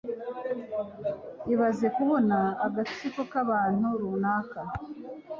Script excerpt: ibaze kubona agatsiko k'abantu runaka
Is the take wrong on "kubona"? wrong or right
right